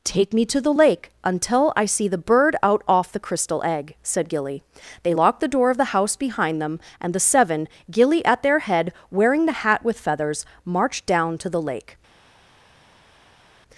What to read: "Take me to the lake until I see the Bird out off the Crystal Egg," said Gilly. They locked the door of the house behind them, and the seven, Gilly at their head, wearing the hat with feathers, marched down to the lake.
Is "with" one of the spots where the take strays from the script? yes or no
no